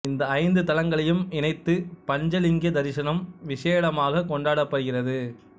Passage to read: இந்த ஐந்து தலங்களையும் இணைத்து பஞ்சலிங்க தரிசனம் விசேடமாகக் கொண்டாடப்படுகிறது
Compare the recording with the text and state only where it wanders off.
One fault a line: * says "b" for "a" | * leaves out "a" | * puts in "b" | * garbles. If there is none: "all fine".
all fine